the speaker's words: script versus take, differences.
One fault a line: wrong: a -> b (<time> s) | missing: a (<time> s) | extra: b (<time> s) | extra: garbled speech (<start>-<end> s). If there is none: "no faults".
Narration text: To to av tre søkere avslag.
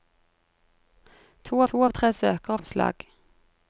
no faults